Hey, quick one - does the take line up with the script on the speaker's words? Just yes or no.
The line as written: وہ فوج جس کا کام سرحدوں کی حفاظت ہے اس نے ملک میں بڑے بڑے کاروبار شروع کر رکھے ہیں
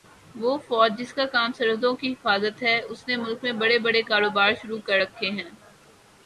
yes